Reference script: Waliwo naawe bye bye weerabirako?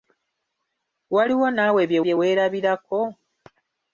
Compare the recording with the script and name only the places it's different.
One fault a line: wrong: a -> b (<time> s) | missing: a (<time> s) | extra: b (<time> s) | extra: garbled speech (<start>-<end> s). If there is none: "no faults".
no faults